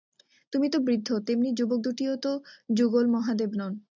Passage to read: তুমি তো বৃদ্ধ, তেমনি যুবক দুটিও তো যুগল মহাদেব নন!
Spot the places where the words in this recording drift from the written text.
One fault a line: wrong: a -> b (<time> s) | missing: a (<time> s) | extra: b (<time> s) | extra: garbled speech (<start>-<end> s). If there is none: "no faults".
no faults